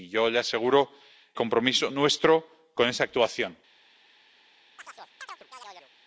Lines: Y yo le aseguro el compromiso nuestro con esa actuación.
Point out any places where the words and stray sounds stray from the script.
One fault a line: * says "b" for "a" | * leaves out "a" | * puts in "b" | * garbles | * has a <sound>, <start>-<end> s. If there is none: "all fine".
* leaves out "el"
* has a chirp, 4.8-5.9 s